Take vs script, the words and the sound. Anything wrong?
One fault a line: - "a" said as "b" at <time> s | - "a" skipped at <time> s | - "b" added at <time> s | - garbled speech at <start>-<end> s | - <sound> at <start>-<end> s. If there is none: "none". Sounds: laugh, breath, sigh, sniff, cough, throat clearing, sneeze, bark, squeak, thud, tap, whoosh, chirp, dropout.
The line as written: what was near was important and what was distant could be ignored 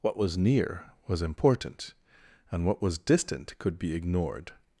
none